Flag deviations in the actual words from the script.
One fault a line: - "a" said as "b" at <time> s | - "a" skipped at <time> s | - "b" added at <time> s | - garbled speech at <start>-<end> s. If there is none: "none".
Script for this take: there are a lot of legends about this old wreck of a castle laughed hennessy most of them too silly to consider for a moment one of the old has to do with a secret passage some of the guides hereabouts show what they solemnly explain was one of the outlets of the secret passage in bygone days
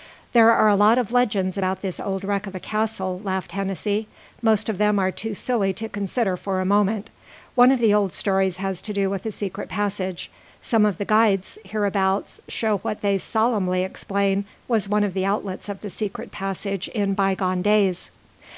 - "are" added at 5.0 s
- "stories" added at 8.1 s